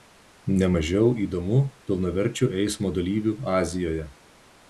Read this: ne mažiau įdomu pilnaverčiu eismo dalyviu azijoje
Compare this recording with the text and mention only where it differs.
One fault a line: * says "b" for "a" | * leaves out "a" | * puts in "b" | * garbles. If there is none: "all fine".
all fine